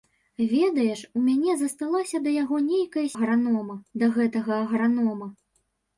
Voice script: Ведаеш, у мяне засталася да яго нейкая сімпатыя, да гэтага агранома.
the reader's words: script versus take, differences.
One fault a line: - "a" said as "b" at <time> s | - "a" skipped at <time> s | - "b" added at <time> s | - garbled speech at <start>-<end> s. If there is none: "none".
- "сімпатыя" said as "агранома" at 3.1 s